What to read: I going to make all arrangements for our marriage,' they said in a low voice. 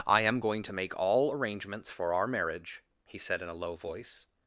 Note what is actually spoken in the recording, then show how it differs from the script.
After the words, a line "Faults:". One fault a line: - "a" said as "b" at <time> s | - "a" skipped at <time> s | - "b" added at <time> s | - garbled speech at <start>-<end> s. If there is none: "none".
I am going to make all arrangements for our marriage,' he said in a low voice.
Faults:
- "am" added at 0.2 s
- "they" said as "he" at 3.1 s